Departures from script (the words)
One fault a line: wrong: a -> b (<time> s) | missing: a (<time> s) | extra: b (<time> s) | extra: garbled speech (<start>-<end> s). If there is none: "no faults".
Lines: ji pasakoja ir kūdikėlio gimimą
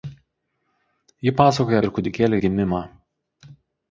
no faults